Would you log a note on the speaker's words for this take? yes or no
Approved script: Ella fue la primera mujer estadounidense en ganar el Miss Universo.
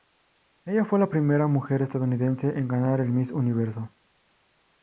no